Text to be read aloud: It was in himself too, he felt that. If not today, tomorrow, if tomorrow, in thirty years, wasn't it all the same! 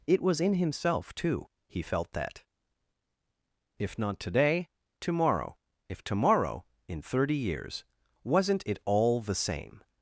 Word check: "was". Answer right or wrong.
right